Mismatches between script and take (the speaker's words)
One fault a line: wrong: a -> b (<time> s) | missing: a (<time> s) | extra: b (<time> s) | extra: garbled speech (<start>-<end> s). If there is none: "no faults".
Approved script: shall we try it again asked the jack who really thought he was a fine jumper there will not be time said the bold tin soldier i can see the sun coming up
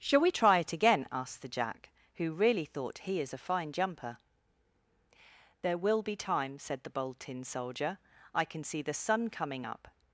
wrong: was -> is (3.2 s)
missing: not (6.0 s)